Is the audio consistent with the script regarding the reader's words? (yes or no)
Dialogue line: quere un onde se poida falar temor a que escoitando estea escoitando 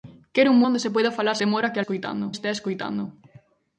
yes